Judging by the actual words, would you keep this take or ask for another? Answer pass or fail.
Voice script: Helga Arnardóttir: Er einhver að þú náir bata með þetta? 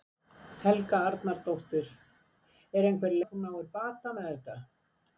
pass